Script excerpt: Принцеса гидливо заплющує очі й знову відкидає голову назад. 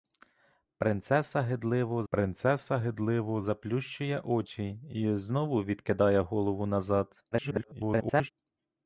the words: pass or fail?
fail